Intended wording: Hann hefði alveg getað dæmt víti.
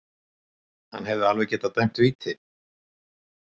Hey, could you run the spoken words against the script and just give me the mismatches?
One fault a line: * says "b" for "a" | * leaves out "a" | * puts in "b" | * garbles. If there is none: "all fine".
all fine